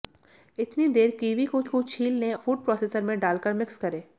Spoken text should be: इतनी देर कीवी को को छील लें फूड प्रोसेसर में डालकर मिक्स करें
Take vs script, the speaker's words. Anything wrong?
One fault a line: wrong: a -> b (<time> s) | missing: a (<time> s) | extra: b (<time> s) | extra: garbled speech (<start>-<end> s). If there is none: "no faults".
no faults